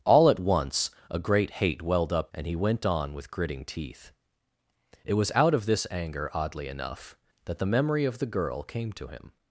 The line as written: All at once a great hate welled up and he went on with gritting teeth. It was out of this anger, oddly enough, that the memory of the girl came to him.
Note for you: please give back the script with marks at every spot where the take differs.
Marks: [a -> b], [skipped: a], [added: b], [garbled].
All at once a great hate welled up and he went on with gritting teeth. It was out of this anger, oddly enough, that the memory of the girl came to him.